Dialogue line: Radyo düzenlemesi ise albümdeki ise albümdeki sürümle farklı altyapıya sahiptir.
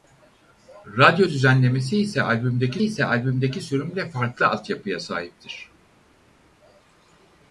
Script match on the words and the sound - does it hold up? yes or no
yes